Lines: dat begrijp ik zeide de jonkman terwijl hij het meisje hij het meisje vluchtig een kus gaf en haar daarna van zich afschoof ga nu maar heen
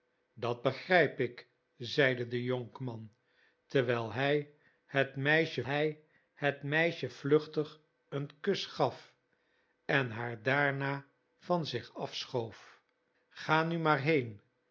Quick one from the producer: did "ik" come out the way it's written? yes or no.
yes